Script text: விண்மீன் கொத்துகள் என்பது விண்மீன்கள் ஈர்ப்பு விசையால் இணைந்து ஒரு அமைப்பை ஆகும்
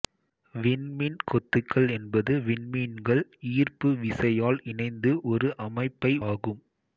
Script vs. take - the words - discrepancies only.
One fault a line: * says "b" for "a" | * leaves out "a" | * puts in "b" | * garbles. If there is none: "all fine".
all fine